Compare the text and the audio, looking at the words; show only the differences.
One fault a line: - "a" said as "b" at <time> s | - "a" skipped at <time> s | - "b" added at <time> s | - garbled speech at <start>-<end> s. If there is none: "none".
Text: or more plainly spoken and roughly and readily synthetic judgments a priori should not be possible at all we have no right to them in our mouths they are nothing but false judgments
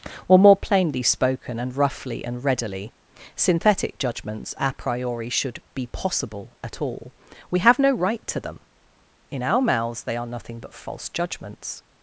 - "not" skipped at 5.6 s